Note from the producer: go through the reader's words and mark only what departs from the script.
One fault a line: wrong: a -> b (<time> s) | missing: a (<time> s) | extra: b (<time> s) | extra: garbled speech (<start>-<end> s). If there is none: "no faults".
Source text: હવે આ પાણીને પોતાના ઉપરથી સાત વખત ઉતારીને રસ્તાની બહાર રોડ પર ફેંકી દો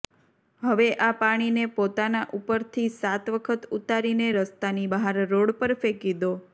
no faults